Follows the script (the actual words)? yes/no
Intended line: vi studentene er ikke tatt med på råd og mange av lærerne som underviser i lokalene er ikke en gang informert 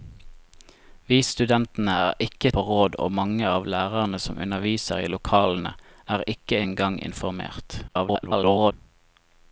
no